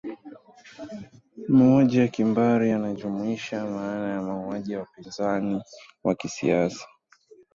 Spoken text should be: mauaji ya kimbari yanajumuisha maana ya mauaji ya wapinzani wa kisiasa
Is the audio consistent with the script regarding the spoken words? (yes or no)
yes